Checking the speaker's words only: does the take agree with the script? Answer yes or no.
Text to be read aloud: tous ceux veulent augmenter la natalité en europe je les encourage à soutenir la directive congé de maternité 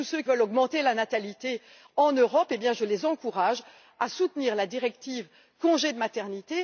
yes